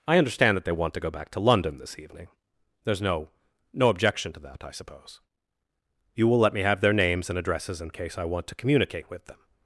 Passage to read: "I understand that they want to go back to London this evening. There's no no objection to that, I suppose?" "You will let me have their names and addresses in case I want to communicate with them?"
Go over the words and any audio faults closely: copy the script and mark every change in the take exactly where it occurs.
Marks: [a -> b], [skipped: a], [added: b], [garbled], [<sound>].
"I understand that they want to go back to London this evening. There's no no objection to that, I suppose?" "You will let me have their names and addresses in case I want to communicate with them?"